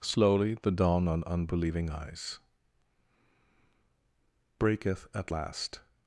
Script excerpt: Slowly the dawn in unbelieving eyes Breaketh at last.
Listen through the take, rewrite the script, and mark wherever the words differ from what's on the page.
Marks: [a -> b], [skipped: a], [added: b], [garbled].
Slowly the dawn [in -> on] unbelieving eyes Breaketh at last.